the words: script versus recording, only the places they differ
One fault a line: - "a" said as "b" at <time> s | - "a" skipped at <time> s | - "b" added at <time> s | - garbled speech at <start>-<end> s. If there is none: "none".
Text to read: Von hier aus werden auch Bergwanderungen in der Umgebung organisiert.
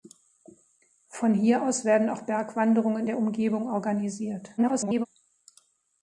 - "in" skipped at 3.1 s
- garbled speech at 4.6-5.1 s